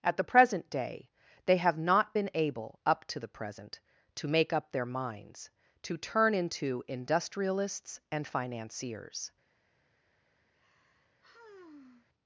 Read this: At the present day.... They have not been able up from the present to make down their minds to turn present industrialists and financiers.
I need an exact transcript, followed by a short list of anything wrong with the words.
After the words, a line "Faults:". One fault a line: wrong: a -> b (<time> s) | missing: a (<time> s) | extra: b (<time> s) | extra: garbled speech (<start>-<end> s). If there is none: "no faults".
At the present day.... They have not been able up to the present to make up their minds to turn into industrialists and financiers.
Faults:
wrong: from -> to (3.0 s)
wrong: down -> up (4.5 s)
wrong: present -> into (6.3 s)